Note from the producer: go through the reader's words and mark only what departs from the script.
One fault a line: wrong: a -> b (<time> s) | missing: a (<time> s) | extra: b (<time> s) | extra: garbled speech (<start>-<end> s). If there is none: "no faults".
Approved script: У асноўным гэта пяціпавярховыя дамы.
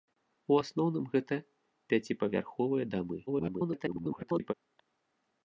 extra: garbled speech (3.3-4.5 s)